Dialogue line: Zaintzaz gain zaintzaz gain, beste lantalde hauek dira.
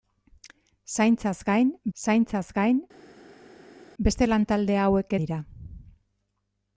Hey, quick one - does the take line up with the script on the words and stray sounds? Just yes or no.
yes